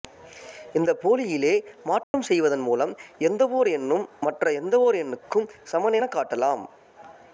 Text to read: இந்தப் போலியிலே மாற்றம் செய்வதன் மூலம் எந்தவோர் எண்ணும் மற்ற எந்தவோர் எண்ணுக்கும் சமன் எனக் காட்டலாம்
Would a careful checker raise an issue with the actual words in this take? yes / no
no